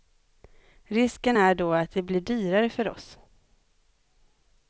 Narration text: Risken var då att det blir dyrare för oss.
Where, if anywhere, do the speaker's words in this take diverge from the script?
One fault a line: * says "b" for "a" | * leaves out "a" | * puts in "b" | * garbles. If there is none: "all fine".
* says "är" for "var"